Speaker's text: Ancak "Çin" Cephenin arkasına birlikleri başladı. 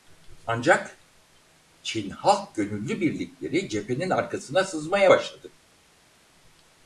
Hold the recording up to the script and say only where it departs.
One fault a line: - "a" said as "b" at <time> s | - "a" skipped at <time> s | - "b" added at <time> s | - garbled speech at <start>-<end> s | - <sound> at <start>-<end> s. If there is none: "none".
- "Halk Gönüllü birlikleri" added at 2.1 s
- "birlikleri" said as "sızmaya" at 4.6 s